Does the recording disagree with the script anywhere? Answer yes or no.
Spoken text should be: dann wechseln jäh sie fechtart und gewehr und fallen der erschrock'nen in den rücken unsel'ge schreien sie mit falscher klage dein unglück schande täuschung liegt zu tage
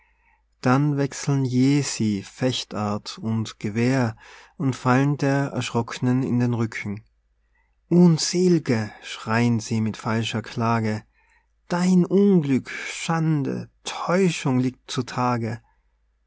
no